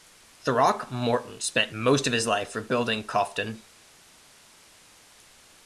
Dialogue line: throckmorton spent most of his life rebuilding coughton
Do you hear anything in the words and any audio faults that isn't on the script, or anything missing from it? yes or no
no